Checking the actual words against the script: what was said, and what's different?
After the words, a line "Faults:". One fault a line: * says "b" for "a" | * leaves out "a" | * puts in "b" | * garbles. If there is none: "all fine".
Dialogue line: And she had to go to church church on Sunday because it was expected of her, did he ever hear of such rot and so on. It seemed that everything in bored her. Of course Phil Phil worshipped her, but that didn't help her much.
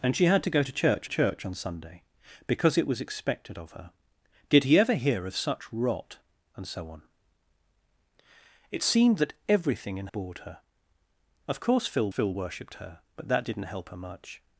And she had to go to church church on Sunday because it was expected of her, did he ever hear of such rot and so on. It seemed that everything in bored her. Of course Phil Phil worshipped her, but that didn't help her much.
Faults:
all fine